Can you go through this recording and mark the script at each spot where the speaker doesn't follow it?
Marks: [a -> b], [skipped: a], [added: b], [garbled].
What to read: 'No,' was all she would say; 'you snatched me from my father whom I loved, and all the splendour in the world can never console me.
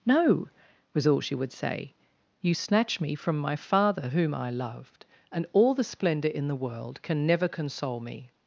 'No,' was all she would say; 'you [snatched -> snatch] me from my father whom I loved, and all the splendour in the world can never console me.